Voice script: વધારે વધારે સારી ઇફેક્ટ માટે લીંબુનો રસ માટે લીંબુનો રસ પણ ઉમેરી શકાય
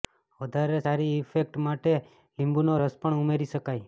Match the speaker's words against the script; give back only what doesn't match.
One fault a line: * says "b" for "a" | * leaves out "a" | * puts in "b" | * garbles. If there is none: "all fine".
* leaves out "વધારે"
* leaves out "માટે લીંબુનો રસ"